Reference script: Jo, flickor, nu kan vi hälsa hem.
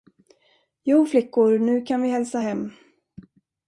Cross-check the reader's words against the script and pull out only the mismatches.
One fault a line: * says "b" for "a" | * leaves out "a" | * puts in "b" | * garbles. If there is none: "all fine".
all fine